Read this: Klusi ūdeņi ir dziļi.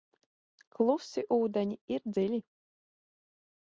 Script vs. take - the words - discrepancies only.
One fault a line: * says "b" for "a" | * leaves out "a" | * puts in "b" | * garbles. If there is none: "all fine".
all fine